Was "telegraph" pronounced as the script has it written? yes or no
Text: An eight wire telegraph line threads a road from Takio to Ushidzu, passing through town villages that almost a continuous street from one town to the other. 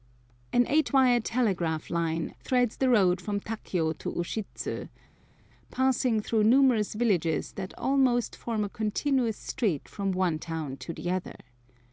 yes